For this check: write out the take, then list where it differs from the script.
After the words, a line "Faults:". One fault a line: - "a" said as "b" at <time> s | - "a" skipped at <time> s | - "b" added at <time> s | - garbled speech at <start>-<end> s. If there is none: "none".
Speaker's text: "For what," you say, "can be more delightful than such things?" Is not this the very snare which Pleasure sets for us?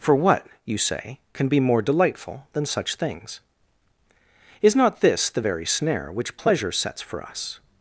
"For what," you say, "can be more delightful than such things?" Is not this the very snare which Pleasure sets for us?
Faults:
none